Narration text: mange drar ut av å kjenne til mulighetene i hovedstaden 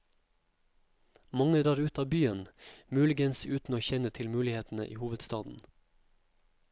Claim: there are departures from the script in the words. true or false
true